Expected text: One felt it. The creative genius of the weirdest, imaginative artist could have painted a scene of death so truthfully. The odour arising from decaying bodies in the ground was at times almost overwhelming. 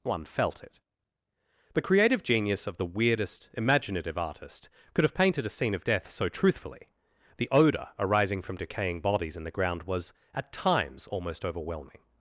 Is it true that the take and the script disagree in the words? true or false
false